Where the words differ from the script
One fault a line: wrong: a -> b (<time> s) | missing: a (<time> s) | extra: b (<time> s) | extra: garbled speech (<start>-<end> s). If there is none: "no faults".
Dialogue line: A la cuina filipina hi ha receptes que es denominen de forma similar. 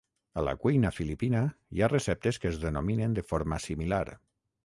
no faults